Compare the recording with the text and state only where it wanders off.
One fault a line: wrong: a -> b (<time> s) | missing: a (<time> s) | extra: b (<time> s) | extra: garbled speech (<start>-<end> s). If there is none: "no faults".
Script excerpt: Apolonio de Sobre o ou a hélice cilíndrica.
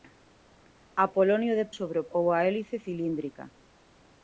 no faults